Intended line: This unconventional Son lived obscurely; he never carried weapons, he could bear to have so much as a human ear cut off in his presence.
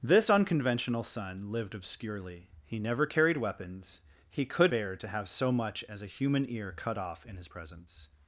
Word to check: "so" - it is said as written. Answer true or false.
true